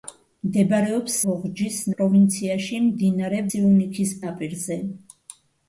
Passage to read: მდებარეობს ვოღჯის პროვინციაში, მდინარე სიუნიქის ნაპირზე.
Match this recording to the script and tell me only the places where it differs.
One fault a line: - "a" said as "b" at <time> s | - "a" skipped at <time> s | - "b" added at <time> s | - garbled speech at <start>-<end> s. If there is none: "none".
none